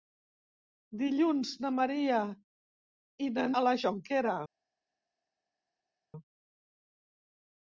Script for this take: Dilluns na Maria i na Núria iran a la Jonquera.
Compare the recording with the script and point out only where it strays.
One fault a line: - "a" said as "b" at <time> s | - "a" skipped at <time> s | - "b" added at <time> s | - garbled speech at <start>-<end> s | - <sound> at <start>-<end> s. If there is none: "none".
- "Núria iran" skipped at 3.5 s